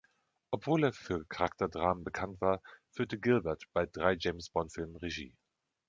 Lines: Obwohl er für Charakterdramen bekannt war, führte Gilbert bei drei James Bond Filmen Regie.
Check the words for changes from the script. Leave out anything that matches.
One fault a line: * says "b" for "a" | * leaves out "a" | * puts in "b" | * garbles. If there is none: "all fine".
all fine